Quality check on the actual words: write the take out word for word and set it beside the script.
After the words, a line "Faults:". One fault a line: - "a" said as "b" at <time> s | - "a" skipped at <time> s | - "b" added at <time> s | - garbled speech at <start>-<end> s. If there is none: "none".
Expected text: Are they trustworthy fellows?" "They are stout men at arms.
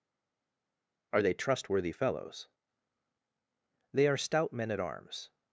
Are they trustworthy fellows?" "They are stout men at arms.
Faults:
none